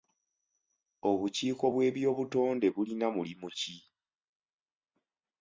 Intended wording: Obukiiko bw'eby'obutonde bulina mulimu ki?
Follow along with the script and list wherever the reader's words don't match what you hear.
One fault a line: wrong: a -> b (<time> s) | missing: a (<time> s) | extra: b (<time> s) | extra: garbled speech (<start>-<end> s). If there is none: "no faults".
no faults